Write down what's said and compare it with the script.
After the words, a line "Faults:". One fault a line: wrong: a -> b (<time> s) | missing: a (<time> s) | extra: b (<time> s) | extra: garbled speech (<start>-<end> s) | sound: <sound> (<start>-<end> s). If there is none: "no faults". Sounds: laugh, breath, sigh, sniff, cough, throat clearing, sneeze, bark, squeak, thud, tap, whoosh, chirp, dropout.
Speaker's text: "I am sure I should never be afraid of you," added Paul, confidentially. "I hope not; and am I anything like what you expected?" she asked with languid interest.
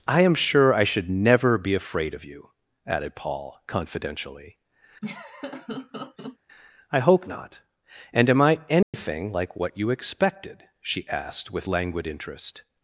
"I am sure I should never be afraid of you," added Paul, confidentially. "I hope not; and am I anything like what you expected?" she asked with languid interest.
Faults:
sound: laugh (5.0-6.4 s)
sound: dropout (8.8-8.9 s)